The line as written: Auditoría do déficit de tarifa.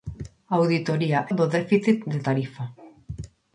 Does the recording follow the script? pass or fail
pass